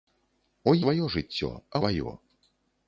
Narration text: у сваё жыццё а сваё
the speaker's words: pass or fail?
pass